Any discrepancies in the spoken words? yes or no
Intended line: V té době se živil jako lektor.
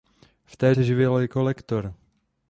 yes